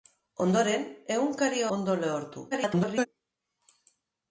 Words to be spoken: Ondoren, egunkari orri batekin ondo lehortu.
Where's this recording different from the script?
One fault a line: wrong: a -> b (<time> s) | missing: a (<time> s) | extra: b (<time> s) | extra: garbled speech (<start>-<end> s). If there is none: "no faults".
missing: orri batekin (1.6 s)
extra: garbled speech (2.5-3.1 s)